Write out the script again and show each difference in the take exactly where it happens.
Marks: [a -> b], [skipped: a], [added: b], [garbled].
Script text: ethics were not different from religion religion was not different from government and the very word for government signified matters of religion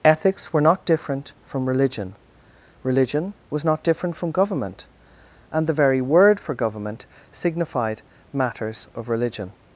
ethics were not different from religion religion was not different from government and the very word for government signified matters of religion